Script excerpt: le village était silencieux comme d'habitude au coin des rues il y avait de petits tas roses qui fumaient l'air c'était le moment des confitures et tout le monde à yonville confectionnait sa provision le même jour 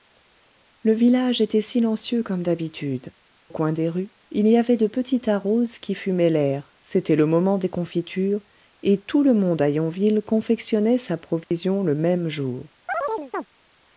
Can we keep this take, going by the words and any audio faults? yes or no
no